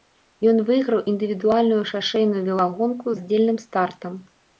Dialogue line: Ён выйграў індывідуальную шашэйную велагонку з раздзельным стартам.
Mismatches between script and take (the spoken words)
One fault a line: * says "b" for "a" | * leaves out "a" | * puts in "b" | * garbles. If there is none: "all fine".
* leaves out "з"